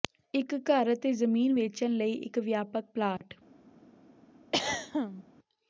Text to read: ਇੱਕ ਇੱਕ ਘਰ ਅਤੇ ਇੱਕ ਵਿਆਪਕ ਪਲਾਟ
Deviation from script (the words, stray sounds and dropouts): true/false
true